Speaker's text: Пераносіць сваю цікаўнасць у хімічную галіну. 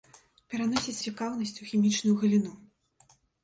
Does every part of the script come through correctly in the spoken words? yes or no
no